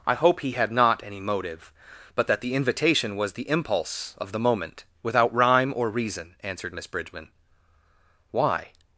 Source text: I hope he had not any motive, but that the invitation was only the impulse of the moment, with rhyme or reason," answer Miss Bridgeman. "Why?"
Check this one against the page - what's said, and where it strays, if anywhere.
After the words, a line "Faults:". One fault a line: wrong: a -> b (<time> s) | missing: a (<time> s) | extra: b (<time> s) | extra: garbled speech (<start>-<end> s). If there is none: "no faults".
I hope he had not any motive, but that the invitation was the impulse of the moment, without rhyme or reason," answered Miss Bridgeman. "Why?"
Faults:
missing: only (3.3 s)
wrong: with -> without (5.0 s)
wrong: answer -> answered (6.4 s)